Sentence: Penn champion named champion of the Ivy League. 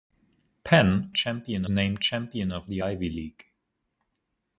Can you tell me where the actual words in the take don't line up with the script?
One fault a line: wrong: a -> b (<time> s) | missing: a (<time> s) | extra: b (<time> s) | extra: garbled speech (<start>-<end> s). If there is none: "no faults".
no faults